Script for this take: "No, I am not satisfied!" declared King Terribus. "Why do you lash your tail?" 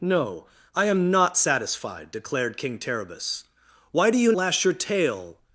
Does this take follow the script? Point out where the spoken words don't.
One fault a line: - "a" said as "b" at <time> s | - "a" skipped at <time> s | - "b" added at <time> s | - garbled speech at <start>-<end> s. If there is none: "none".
none